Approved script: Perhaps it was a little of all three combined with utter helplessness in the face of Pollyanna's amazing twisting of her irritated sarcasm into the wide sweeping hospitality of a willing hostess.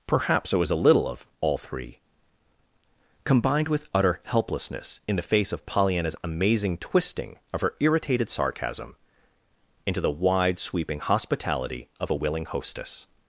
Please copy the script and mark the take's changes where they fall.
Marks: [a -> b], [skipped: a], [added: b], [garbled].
Perhaps it was a little of all three combined with utter helplessness in the face of Pollyanna's amazing twisting of her irritated sarcasm into the wide sweeping hospitality of a willing hostess.